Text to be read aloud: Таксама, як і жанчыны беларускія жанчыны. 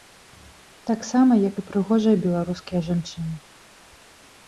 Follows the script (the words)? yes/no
no